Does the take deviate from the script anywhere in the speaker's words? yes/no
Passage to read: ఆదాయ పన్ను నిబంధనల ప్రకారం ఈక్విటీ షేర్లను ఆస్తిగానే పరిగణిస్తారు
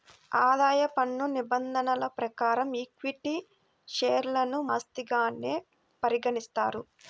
no